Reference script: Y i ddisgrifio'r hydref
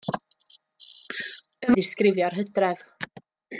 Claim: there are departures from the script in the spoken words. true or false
false